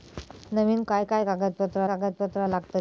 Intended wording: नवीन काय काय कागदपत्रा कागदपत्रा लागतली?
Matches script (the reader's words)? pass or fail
pass